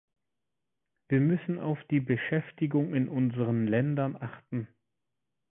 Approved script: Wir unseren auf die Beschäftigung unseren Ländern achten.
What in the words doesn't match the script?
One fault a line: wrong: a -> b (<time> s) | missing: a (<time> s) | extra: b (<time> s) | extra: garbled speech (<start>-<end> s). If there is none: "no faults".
wrong: unseren -> müssen (1.2 s)
extra: in (2.9 s)